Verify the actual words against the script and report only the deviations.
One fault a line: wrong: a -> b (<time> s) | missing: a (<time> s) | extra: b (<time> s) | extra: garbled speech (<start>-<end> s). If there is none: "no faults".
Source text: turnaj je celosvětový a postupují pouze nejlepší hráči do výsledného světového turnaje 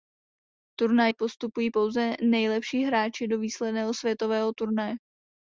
missing: je celosvětový (1.1 s)